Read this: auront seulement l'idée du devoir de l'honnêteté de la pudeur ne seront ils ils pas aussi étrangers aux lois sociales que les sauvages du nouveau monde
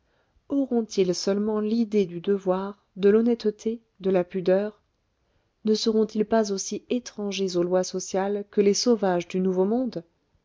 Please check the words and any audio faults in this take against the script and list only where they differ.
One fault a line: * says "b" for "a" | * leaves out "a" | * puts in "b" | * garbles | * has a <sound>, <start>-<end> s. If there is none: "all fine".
* puts in "ils"
* leaves out "ils"